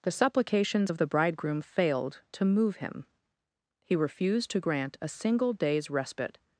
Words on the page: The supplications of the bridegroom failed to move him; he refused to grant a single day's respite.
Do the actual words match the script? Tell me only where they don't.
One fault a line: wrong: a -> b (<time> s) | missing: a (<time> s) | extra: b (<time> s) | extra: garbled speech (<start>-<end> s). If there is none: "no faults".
no faults